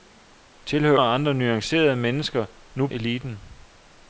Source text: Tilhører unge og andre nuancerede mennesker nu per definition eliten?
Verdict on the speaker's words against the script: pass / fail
fail